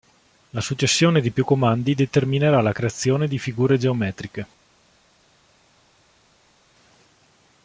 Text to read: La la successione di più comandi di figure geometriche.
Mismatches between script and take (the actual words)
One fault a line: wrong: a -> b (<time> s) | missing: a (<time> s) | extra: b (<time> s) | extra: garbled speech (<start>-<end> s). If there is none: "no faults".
missing: la (0.6 s)
extra: determinerà la creazione (1.9 s)